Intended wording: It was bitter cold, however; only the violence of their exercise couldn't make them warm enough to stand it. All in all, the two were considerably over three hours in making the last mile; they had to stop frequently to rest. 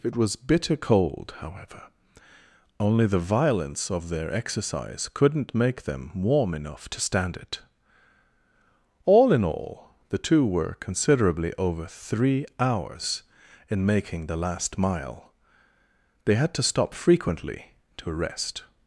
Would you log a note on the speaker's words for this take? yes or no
no